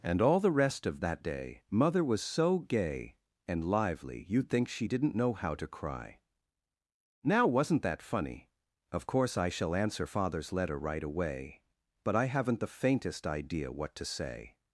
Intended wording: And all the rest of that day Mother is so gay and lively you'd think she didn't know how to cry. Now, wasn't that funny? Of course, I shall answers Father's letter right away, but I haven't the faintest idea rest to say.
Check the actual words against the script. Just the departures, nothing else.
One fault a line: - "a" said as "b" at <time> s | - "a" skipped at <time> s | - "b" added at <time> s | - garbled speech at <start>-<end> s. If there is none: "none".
- "is" said as "was" at 2.0 s
- "answers" said as "answer" at 9.7 s
- "rest" said as "what" at 13.7 s